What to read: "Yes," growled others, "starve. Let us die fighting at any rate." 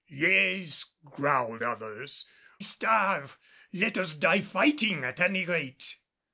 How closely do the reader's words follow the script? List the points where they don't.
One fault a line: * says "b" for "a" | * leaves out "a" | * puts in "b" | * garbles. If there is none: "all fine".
all fine